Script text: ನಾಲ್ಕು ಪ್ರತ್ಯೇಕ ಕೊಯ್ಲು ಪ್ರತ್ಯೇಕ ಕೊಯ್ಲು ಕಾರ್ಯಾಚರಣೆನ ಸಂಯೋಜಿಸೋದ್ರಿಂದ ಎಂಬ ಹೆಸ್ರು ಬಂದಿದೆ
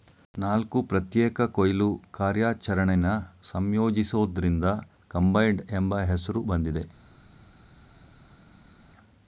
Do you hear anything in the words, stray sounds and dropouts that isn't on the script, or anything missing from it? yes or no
yes